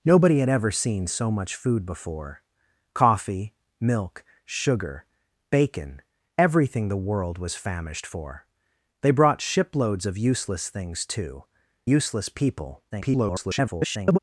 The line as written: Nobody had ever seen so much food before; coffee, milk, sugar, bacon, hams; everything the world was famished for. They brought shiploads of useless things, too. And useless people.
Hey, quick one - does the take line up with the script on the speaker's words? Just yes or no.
no